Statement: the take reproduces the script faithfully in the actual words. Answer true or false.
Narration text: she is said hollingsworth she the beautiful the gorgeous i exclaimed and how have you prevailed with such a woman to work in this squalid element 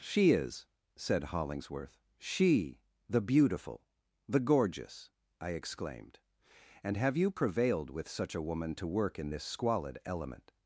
false